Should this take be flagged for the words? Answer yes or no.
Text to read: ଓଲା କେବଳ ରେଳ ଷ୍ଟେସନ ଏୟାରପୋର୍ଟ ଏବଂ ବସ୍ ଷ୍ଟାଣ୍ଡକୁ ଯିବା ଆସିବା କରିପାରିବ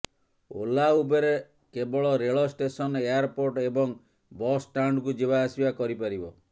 yes